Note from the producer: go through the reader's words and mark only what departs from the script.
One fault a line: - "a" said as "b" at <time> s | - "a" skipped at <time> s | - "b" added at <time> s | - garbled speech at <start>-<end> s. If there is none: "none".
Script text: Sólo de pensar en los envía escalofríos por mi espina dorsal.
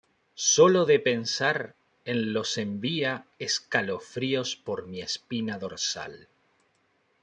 none